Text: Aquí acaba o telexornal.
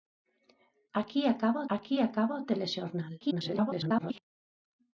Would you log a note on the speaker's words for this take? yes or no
yes